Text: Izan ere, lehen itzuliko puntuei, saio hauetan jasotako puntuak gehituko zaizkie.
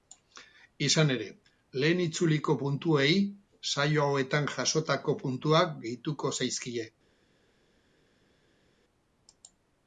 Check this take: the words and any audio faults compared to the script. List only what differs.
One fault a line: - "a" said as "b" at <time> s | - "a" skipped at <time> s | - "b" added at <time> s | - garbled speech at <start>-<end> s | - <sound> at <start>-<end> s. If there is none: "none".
none